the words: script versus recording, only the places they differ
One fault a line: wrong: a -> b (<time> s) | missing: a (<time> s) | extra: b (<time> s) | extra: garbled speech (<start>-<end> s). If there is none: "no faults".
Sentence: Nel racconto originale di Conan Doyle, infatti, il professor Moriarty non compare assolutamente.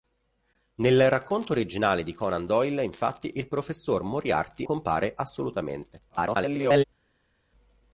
missing: non (4.7 s)
extra: garbled speech (6.1-6.8 s)